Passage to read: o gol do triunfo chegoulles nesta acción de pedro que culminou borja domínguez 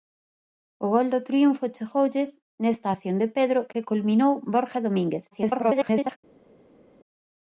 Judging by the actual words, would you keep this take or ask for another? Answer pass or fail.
fail